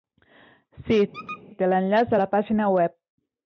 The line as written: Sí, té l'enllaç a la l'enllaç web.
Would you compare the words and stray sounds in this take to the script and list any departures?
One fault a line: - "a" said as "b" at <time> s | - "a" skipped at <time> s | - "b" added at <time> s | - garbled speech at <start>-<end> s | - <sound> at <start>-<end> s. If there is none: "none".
- squeak at 1.1-1.4 s
- "l'enllaç" said as "pàgina" at 2.3 s